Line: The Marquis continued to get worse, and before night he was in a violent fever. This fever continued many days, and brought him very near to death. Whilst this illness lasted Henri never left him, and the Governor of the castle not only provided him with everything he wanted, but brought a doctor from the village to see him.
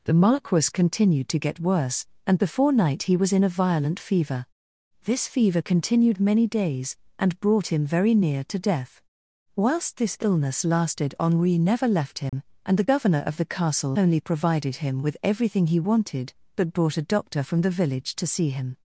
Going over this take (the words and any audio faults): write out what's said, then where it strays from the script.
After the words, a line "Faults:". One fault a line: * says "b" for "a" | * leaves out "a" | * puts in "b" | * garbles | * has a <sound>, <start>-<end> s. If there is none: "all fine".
The Marquis continued to get worse, and before night he was in a violent fever. This fever continued many days, and brought him very near to death. Whilst this illness lasted Henri never left him, and the Governor of the castle only provided him with everything he wanted, but brought a doctor from the village to see him.
Faults:
* has a dropout, 12.3-12.3 s
* leaves out "not"